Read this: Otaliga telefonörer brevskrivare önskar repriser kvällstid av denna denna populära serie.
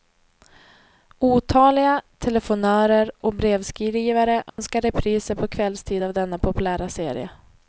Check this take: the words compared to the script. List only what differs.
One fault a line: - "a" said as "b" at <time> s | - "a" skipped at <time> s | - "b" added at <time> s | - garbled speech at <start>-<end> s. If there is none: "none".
- "och" added at 3.2 s
- "på" added at 5.4 s
- "denna" skipped at 6.4 s